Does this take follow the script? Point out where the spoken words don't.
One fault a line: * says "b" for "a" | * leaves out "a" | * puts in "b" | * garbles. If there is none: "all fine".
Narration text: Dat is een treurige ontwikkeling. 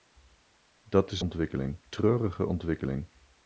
* says "ontwikkeling" for "een"